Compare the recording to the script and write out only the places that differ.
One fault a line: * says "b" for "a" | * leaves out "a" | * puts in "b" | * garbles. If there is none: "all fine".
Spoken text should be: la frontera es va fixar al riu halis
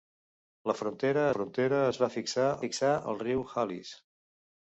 * puts in "frontera"
* puts in "fixar"